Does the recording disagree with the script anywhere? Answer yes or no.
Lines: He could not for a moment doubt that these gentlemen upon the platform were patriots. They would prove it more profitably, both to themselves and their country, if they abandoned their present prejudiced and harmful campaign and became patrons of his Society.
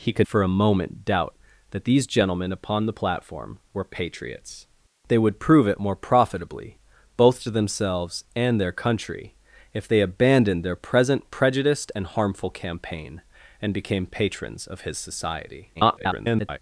yes